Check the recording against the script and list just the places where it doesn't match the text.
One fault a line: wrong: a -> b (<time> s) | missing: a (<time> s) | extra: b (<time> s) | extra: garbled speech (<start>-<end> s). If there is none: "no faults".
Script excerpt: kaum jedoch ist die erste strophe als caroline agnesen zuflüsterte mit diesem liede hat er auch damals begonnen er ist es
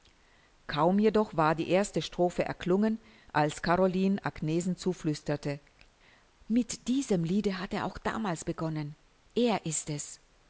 wrong: ist -> war (1.4 s)
extra: erklungen (2.4 s)